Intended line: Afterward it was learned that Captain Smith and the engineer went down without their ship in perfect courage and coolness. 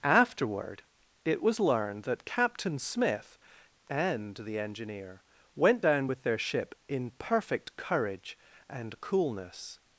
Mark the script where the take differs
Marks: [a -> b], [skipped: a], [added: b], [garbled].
Afterward it was learned that Captain Smith and the engineer went down [without -> with] their ship in perfect courage and coolness.